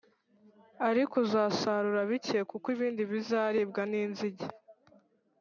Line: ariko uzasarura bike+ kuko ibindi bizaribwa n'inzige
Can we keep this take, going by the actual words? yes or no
yes